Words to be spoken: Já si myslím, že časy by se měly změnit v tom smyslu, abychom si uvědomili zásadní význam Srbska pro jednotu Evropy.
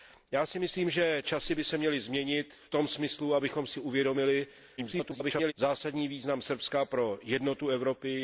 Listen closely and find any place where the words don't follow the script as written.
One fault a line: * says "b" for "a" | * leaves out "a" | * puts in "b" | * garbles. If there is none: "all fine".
* garbles